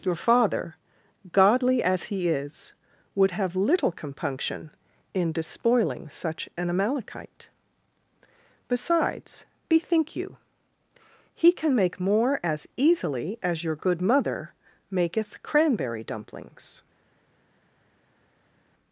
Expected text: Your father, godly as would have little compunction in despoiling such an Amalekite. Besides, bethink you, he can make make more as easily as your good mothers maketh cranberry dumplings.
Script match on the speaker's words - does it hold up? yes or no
no